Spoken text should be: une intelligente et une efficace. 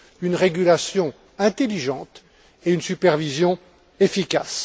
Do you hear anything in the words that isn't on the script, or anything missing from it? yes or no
yes